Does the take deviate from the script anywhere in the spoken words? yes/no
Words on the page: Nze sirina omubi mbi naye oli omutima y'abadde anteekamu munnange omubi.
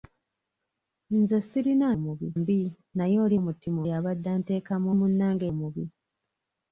no